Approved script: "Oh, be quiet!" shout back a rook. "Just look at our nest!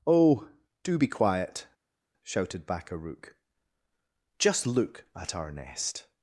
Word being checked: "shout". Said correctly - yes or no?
no